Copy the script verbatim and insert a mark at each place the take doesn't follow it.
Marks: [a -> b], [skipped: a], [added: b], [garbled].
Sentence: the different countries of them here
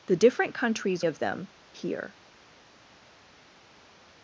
the different countries of them here